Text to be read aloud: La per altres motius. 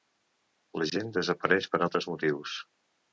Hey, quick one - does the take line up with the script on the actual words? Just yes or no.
no